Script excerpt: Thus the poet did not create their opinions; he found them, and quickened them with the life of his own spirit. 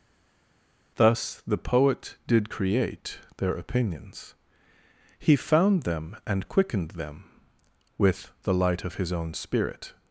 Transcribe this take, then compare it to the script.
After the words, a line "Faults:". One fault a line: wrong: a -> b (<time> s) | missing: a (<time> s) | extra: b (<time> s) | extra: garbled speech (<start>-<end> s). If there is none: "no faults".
Thus the poet did create their opinions; he found them, and quickened them with the light of his own spirit.
Faults:
missing: not (2.5 s)
wrong: life -> light (8.5 s)